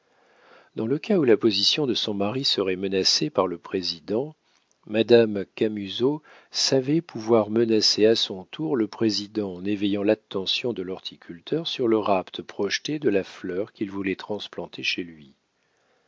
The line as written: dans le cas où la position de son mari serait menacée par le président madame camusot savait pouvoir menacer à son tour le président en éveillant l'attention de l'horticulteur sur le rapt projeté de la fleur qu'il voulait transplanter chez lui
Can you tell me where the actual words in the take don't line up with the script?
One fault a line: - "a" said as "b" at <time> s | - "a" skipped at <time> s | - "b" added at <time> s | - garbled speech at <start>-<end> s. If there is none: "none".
none